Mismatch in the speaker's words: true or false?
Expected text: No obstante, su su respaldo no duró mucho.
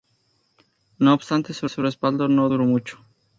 false